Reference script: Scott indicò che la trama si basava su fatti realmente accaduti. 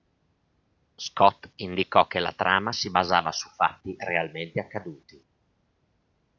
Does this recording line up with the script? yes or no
yes